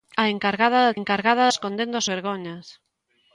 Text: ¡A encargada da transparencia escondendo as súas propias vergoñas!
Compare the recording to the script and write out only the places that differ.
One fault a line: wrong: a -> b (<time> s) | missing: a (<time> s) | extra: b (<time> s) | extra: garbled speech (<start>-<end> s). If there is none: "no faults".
wrong: transparencia -> encargada (1.0 s)
missing: súas propias (2.0 s)